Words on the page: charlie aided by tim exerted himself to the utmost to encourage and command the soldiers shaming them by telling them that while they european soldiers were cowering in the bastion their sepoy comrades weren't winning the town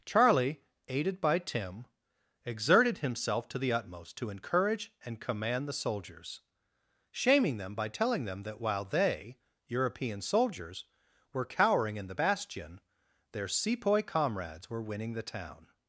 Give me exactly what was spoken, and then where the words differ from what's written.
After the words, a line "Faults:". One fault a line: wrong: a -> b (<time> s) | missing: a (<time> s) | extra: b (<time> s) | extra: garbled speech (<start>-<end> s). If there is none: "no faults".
charlie aided by tim exerted himself to the utmost to encourage and command the soldiers shaming them by telling them that while they european soldiers were cowering in the bastion their sepoy comrades were winning the town
Faults:
wrong: weren't -> were (14.7 s)